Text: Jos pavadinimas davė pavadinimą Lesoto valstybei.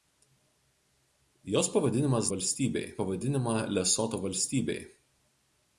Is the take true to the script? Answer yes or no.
no